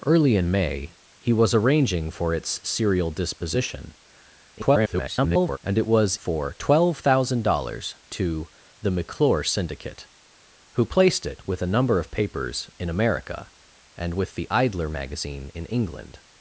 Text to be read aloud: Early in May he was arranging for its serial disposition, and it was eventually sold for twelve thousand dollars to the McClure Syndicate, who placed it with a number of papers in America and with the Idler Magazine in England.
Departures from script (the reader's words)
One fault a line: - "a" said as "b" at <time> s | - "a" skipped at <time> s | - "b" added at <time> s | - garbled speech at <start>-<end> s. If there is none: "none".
- garbled speech at 4.5-5.6 s
- "eventually sold" skipped at 6.2 s